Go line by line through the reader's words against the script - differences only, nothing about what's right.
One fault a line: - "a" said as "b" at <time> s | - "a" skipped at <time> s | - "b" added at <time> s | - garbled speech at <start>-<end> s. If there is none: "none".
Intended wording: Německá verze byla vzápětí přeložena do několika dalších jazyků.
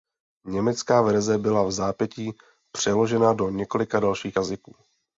none